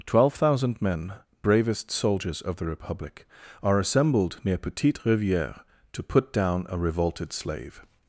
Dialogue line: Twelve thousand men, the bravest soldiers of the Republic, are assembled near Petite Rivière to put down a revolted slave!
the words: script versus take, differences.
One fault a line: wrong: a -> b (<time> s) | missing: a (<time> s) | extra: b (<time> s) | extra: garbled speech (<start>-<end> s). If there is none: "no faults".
missing: the (1.1 s)